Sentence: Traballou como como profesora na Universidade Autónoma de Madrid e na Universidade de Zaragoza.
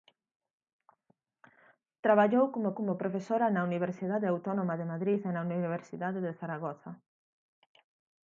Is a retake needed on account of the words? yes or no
no